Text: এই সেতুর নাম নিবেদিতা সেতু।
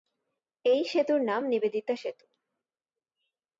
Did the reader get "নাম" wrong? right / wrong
right